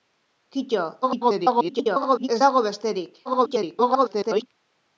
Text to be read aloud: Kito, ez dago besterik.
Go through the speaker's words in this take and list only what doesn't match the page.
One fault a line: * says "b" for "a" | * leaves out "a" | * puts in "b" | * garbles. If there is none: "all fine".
* garbles
* garbles